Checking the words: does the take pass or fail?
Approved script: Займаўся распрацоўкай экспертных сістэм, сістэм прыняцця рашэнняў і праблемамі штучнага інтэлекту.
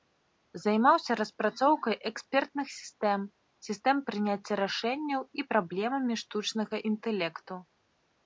pass